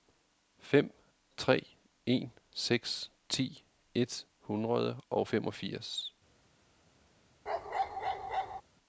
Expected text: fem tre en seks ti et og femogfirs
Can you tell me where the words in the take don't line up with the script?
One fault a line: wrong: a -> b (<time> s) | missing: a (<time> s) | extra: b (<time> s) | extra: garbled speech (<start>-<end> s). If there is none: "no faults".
extra: hundrede (4.4 s)